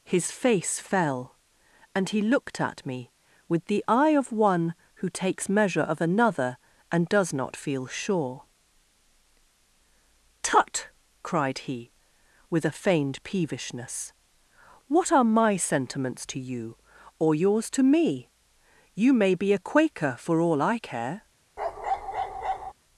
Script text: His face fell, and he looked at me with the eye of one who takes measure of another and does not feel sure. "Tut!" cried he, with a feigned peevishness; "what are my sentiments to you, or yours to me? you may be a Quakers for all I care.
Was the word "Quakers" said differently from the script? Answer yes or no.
yes